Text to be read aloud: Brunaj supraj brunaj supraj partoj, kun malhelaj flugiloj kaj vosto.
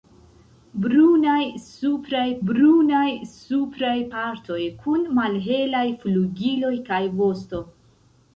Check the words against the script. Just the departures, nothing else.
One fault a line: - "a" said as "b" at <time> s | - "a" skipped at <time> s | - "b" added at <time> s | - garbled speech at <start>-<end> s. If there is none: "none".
none